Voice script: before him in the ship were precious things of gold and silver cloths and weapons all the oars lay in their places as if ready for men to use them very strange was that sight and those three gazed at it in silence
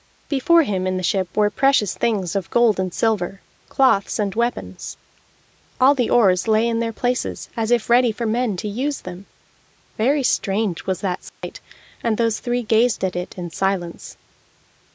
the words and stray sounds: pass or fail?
fail